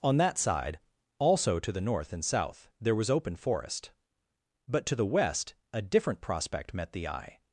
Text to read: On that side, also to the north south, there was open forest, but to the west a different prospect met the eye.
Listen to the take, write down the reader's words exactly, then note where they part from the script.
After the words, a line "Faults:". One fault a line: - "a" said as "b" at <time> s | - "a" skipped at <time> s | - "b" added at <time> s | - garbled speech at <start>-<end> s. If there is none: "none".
On that side, also to the north and south, there was open forest, but to the west a different prospect met the eye.
Faults:
- "and" added at 2.1 s